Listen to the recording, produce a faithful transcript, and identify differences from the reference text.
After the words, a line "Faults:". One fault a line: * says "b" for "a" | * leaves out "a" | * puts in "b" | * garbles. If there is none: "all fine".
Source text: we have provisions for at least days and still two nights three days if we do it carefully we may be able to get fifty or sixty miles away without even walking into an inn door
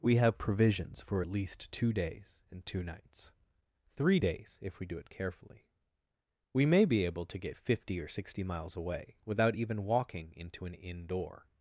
we have provisions for at least two days and two nights three days if we do it carefully we may be able to get fifty or sixty miles away without even walking into an inn door
Faults:
* puts in "two"
* leaves out "still"